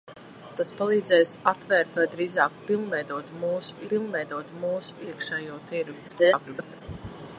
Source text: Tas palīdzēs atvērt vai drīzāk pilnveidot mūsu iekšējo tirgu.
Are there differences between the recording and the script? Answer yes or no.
yes